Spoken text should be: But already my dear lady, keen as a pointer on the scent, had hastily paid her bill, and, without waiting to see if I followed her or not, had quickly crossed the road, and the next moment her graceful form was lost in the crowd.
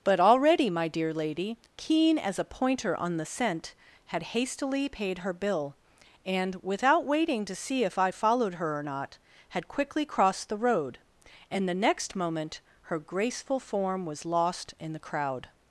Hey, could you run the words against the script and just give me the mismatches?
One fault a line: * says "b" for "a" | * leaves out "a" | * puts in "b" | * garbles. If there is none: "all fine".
all fine